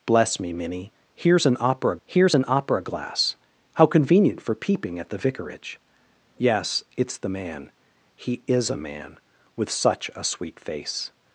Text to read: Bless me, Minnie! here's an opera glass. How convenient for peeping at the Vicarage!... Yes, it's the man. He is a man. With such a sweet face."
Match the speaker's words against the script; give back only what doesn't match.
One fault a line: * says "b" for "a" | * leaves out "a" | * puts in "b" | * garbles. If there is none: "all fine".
* puts in "here's an opera"